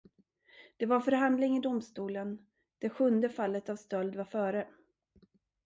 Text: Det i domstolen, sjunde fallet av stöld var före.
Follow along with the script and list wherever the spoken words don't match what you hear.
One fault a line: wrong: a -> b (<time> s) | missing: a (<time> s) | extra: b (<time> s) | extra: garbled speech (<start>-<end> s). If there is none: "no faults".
extra: var förhandling (0.8 s)
extra: det (2.8 s)